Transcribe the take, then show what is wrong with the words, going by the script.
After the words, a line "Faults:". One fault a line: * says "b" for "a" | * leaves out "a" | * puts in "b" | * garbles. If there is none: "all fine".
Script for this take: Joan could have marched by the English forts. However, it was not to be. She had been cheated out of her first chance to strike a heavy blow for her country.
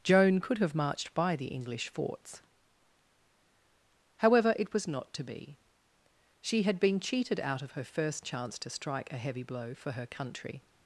Joan could have marched by the English forts. However, it was not to be. She had been cheated out of her first chance to strike a heavy blow for her country.
Faults:
all fine